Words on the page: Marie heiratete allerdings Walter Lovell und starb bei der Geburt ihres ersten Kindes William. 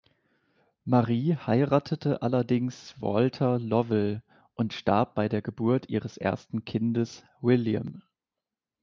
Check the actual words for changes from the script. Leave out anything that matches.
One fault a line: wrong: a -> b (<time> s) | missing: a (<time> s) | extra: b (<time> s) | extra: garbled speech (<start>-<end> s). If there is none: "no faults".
no faults